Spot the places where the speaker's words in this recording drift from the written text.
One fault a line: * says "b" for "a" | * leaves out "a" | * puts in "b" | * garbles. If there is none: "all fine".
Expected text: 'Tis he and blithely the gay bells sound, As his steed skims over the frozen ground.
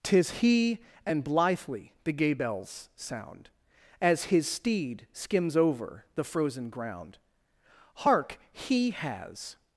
* puts in "Hark he has"